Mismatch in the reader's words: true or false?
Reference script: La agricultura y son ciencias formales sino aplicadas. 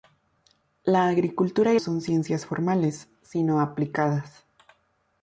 false